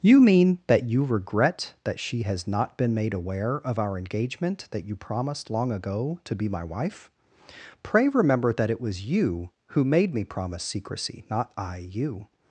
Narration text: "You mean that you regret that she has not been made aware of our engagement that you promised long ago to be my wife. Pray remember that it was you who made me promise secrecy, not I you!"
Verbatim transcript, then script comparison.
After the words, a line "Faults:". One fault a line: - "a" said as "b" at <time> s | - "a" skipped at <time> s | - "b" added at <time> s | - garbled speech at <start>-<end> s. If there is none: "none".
"You mean that you regret that she has not been made aware of our engagement that you promised long ago to be my wife. Pray remember that it was you who made me promise secrecy, not I you!"
Faults:
none